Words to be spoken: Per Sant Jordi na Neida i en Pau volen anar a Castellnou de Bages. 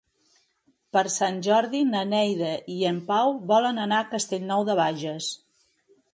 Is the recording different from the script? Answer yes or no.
no